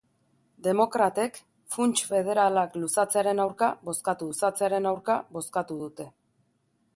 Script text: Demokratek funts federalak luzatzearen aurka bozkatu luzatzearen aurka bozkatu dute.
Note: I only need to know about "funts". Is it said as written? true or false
true